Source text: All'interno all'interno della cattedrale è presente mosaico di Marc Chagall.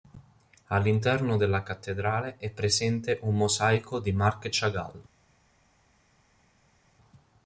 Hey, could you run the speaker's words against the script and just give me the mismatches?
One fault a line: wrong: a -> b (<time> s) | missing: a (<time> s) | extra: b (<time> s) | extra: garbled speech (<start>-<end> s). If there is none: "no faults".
missing: all'interno (1.4 s)
extra: un (3.2 s)